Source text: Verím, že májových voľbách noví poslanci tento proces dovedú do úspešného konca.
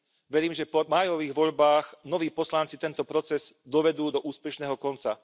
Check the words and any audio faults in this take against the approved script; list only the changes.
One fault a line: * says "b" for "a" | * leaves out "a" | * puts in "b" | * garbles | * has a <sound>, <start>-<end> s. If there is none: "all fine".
* puts in "po"